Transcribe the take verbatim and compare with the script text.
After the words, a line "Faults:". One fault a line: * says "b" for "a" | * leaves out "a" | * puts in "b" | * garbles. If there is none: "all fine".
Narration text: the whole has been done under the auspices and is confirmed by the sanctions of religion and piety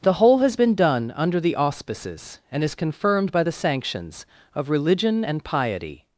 the whole has been done under the auspices and is confirmed by the sanctions of religion and piety
Faults:
all fine